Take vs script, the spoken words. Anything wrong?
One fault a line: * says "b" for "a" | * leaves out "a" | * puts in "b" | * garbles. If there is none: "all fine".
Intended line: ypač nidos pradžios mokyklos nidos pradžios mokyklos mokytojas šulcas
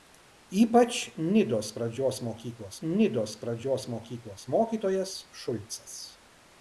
all fine